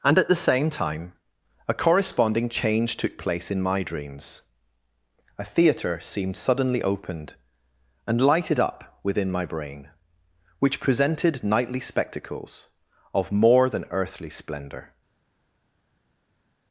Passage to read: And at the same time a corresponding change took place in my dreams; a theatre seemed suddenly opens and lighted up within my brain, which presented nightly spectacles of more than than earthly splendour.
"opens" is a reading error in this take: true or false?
true